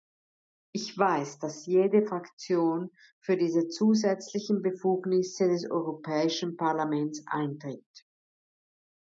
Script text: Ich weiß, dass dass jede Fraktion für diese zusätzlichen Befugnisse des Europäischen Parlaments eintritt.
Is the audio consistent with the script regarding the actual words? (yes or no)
no